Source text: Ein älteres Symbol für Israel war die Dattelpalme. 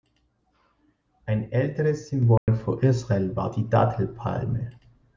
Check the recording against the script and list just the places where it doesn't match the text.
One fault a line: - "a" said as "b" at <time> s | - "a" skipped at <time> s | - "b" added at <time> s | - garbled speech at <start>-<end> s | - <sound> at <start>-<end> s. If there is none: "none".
- dropout at 2.4-2.5 s